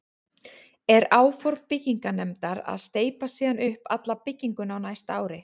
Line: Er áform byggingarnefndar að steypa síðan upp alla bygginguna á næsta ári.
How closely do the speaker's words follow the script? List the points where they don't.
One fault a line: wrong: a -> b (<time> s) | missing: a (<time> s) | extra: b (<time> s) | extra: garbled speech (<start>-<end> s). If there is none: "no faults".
no faults